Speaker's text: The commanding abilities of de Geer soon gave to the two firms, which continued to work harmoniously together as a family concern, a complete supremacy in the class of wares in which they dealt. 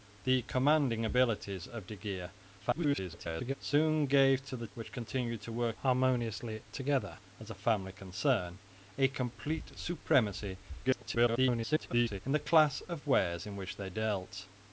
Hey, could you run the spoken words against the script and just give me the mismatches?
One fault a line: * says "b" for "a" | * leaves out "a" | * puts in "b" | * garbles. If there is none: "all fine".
* garbles
* leaves out "two firms"
* garbles